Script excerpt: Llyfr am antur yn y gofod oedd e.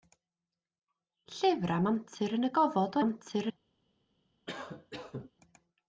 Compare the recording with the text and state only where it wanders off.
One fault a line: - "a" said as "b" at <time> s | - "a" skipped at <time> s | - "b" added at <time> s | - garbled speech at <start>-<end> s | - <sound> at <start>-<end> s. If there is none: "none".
- "oedd" said as "antur" at 3.0 s
- cough at 4.5-5.3 s